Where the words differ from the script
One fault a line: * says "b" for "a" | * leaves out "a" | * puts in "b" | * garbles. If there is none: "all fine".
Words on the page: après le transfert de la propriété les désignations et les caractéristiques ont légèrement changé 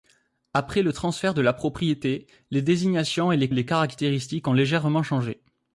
* puts in "les"